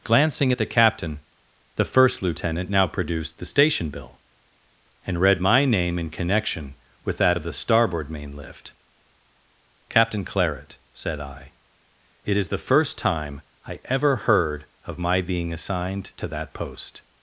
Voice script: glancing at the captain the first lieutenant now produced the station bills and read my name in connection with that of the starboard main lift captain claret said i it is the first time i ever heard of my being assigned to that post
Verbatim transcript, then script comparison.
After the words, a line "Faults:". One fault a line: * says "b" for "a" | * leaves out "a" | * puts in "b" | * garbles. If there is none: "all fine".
glancing at the captain the first lieutenant now produced the station bill and read my name in connection with that of the starboard main lift captain claret said i it is the first time i ever heard of my being assigned to that post
Faults:
* says "bill" for "bills"